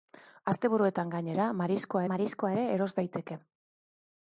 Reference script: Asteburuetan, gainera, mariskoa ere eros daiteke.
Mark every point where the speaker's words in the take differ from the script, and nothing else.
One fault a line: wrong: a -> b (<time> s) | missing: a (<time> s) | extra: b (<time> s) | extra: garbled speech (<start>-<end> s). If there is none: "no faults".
extra: mariskoa (2.1 s)